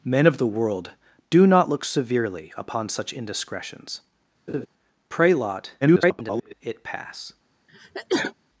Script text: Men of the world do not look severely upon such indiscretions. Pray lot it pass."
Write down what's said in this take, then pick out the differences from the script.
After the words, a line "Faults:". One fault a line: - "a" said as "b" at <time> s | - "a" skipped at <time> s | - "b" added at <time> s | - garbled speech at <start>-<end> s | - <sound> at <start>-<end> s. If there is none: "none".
Men of the world do not look severely upon such indiscretions. Pray lot [garbled] it pass."
Faults:
- laugh at 4.5-4.7 s
- garbled speech at 5.8-6.5 s
- sneeze at 7.7-8.3 s